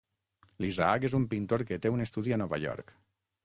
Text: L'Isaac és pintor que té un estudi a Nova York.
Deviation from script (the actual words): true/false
true